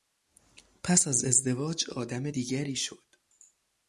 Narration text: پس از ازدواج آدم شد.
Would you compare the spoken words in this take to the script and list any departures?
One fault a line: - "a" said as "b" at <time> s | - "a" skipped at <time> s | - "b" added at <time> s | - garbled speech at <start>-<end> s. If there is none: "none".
- "دیگری" added at 2.3 s